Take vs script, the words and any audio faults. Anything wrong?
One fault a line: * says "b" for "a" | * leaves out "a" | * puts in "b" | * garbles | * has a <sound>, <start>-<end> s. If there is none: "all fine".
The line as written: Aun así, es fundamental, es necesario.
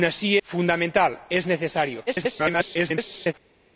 * leaves out "es"
* garbles